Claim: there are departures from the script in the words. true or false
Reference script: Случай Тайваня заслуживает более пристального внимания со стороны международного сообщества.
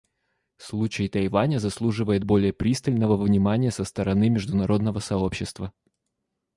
false